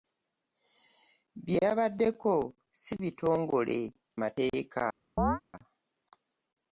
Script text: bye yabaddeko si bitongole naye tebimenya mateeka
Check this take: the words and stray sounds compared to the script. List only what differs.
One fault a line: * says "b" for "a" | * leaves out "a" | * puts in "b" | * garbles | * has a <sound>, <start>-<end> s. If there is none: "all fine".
* leaves out "naye tebimenya"
* has a chirp, 5.2-5.4 s